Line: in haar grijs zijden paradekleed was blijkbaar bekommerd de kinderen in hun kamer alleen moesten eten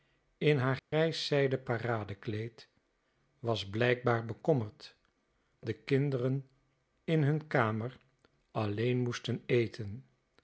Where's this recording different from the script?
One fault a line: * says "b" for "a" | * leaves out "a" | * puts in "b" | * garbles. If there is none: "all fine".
all fine